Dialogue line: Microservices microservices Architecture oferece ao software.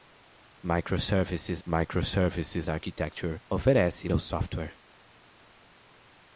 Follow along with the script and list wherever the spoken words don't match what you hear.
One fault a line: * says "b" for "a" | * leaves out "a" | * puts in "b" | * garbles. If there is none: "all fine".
all fine